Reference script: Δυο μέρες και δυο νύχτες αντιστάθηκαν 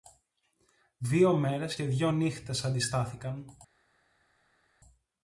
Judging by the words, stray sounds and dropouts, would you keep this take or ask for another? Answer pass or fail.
pass